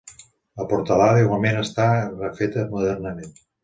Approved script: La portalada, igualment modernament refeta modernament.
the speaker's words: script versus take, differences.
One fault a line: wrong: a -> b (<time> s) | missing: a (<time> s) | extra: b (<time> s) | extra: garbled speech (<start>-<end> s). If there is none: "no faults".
wrong: modernament -> està (1.7 s)